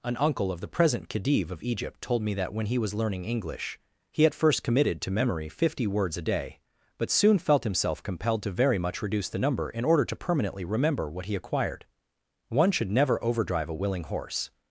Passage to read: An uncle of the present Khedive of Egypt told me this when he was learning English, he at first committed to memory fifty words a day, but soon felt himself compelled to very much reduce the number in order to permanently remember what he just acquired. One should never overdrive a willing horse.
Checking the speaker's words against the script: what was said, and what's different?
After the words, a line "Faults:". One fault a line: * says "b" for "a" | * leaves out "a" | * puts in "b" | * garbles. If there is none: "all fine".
An uncle of the present Khedive of Egypt told me that when he was learning English, he at first committed to memory fifty words a day, but soon felt himself compelled to very much reduce the number in order to permanently remember what he acquired. One should never overdrive a willing horse.
Faults:
* says "that" for "this"
* leaves out "just"